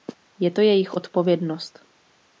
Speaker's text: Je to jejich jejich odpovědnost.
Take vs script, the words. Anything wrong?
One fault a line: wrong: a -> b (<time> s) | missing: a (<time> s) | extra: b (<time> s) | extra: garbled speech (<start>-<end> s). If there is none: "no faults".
missing: jejich (0.9 s)